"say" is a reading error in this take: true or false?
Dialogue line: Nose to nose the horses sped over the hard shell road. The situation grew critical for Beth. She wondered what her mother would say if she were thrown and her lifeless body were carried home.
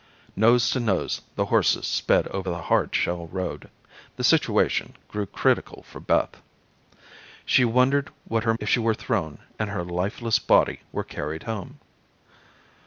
true